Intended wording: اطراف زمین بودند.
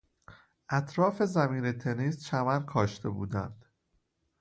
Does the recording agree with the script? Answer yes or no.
no